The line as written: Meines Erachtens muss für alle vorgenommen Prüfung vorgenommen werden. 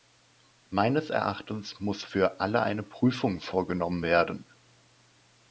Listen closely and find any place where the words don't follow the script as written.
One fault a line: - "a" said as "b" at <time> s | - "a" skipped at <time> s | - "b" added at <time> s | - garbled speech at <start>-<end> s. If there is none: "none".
- "vorgenommen" said as "eine" at 2.6 s